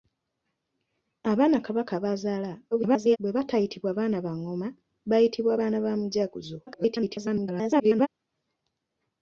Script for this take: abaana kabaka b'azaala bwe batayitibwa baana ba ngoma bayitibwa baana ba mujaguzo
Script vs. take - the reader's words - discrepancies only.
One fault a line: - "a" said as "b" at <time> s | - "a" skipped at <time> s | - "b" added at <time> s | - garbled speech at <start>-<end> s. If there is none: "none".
- garbled speech at 2.7-3.2 s
- garbled speech at 6.7-8.1 s